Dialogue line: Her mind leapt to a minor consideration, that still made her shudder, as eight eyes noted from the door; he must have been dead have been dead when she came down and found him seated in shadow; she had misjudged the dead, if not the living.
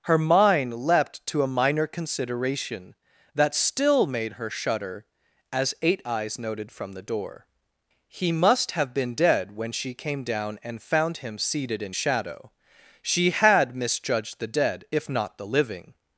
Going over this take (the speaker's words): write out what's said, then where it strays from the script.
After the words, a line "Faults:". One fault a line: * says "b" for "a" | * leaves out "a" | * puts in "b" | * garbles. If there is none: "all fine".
Her mind leapt to a minor consideration, that still made her shudder, as eight eyes noted from the door; he must have been dead when she came down and found him seated in shadow; she had misjudged the dead, if not the living.
Faults:
* leaves out "have been dead"